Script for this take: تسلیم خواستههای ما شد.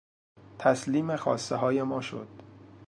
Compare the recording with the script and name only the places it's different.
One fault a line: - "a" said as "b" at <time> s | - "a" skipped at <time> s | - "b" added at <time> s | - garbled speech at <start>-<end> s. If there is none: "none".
none